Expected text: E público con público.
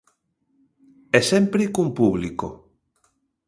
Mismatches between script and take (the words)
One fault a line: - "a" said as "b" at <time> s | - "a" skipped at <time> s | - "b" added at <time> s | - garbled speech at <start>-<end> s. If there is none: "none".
- "público" said as "sempre" at 1.3 s